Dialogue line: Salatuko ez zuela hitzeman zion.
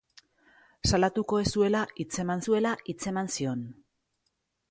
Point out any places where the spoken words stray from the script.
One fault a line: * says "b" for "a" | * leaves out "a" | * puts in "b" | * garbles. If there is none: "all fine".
* puts in "zuela hitzeman"